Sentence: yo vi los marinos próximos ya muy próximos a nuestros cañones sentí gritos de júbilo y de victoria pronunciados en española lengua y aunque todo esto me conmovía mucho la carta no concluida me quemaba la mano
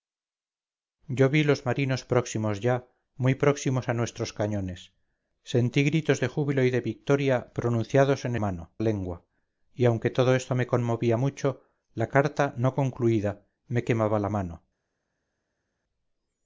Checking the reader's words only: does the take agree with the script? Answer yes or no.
no